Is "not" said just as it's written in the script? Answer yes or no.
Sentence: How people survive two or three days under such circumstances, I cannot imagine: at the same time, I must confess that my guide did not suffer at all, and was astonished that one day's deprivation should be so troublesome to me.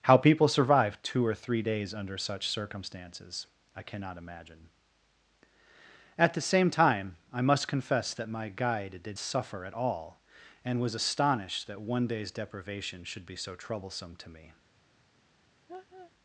no